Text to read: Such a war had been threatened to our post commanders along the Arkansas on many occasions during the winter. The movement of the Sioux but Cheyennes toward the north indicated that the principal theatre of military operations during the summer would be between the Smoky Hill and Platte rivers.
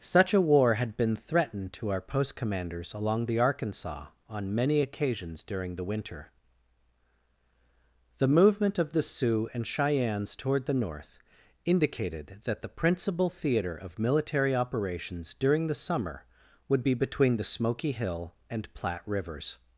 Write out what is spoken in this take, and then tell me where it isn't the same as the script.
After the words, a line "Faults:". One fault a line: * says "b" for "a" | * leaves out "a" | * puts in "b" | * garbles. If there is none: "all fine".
Such a war had been threatened to our post commanders along the Arkansas on many occasions during the winter. The movement of the Sioux and Cheyennes toward the north indicated that the principal theatre of military operations during the summer would be between the Smoky Hill and Platte rivers.
Faults:
* says "and" for "but"